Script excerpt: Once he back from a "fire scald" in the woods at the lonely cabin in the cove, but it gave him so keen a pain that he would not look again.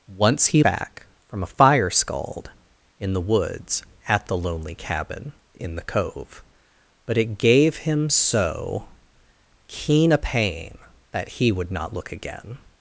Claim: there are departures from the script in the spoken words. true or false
false